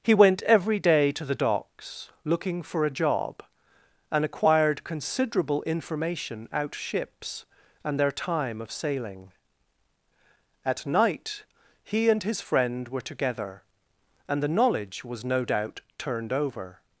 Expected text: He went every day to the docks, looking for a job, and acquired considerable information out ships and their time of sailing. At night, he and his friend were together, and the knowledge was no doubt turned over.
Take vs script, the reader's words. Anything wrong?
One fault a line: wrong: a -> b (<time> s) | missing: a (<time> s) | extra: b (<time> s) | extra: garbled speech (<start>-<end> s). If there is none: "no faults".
no faults